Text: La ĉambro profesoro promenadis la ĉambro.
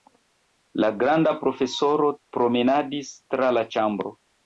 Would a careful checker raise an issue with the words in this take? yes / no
yes